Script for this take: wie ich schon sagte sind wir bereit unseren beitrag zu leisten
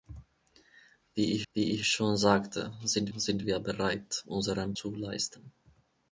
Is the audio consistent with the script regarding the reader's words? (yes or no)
no